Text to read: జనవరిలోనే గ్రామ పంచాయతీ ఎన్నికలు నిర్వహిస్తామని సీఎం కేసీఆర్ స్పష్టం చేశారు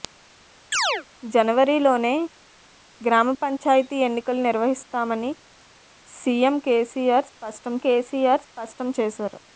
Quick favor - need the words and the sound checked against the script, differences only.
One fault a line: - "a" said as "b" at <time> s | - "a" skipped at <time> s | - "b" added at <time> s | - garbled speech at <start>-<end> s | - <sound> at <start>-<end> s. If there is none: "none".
- chirp at 0.7-1.0 s
- "కేసీఆర్ స్పష్టం" added at 7.8 s